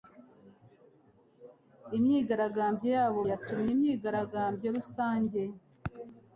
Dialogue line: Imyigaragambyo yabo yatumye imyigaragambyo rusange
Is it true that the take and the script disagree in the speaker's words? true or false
false